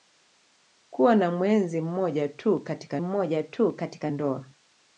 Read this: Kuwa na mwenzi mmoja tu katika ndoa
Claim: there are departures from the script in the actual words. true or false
true